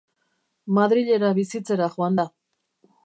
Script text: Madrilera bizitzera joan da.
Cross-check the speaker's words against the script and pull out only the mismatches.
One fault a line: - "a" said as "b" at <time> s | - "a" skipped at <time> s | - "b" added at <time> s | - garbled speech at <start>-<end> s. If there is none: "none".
none